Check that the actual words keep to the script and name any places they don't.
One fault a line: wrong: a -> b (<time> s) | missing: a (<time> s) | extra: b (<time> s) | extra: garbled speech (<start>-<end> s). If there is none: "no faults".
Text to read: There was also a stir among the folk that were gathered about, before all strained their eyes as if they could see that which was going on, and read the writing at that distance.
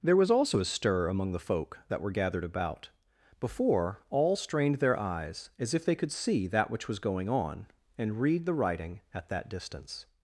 no faults